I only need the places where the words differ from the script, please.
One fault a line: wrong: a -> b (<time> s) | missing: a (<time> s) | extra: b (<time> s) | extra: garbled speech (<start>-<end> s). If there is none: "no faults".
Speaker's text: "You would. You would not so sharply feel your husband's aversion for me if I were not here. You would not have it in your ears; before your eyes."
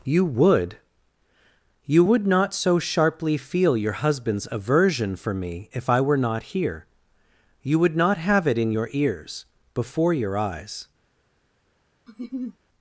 no faults